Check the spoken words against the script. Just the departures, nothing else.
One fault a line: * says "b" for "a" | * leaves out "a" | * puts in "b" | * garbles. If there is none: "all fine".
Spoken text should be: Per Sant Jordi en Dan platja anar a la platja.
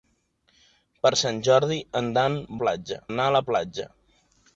all fine